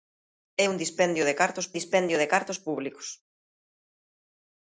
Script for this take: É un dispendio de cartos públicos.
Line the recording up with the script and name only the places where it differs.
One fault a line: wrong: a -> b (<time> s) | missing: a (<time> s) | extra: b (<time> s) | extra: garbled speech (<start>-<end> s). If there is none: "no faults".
extra: dispendio de cartos (1.8 s)